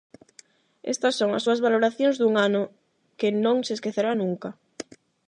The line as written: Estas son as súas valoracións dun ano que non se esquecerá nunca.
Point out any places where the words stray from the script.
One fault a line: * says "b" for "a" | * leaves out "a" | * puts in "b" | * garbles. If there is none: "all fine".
all fine